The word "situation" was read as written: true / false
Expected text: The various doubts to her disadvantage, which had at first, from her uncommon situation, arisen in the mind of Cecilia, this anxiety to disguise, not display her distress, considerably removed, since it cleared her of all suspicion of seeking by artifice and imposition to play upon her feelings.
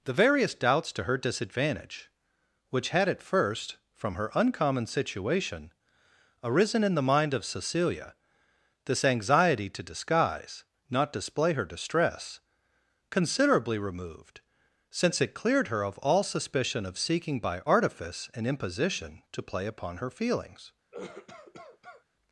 true